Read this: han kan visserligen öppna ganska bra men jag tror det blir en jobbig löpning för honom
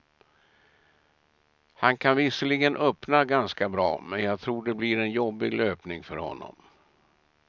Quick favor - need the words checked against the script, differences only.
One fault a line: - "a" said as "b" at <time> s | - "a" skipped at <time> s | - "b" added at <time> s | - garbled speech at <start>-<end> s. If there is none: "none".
none